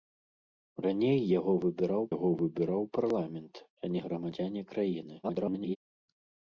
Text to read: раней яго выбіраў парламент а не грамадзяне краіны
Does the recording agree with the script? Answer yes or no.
no